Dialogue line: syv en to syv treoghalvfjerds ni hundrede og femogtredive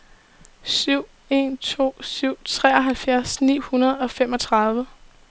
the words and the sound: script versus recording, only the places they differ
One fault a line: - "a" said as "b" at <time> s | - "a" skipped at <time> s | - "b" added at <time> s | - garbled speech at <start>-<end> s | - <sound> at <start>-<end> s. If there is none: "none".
none